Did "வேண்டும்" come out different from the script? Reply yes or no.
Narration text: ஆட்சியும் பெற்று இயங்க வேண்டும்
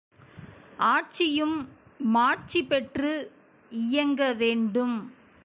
no